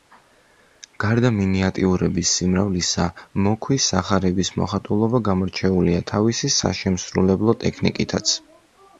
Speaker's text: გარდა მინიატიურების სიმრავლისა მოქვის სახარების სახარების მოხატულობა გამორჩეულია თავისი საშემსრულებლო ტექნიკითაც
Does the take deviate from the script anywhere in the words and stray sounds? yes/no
yes